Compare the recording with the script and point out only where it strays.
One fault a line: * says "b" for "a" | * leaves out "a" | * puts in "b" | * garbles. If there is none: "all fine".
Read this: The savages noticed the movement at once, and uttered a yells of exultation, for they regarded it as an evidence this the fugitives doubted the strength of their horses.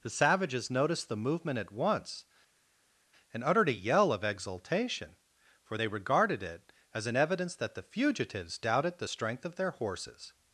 * says "yell" for "yells"
* says "that" for "this"